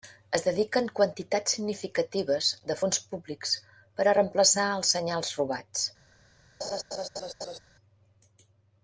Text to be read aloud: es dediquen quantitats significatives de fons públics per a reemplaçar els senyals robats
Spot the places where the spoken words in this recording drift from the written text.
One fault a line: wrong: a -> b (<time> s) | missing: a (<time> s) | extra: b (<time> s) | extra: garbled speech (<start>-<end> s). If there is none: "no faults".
no faults